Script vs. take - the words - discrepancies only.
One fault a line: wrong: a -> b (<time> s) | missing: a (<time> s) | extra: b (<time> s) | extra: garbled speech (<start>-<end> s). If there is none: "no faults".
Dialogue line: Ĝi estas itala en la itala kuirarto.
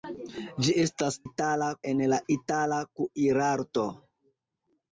no faults